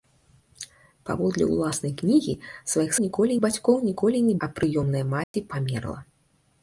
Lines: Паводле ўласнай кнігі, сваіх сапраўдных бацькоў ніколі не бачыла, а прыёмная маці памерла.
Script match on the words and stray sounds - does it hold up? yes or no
no